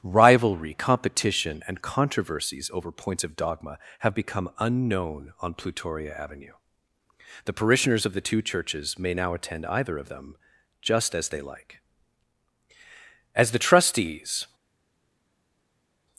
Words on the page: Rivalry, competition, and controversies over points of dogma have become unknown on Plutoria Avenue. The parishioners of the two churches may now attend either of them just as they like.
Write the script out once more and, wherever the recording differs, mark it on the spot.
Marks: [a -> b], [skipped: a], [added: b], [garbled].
Rivalry, competition, and controversies over points of dogma have become unknown on Plutoria Avenue. The parishioners of the two churches may now attend either of them just as they like. [added: As the trustees]